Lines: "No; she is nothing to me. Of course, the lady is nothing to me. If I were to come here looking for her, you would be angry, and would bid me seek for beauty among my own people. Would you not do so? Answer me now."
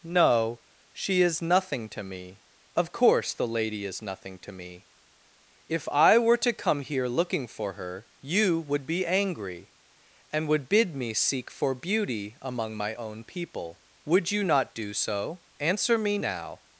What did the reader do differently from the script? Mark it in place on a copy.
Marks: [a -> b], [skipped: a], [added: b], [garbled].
"No; she is nothing to me. Of course, the lady is nothing to me. If I were to come here looking for her, you would be angry, and would bid me seek for beauty among my own people. Would you not do so? Answer me now."